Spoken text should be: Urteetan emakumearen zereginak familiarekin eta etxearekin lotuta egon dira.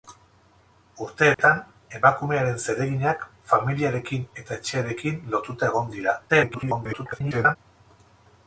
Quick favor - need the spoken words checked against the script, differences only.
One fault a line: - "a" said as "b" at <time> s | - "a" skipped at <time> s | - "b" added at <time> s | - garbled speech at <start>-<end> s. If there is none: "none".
- garbled speech at 6.3-7.6 s